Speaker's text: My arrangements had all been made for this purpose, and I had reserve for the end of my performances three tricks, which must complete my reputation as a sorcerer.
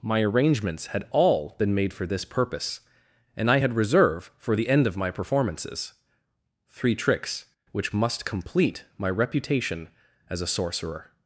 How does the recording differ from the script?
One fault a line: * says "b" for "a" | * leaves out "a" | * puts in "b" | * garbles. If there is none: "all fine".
all fine